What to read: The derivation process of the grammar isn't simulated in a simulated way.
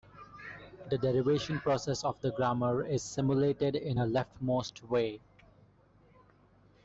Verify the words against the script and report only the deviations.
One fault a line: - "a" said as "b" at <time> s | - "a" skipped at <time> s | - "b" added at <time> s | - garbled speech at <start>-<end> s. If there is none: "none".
- "isn't" said as "is" at 2.8 s
- "simulated" said as "leftmost" at 4.1 s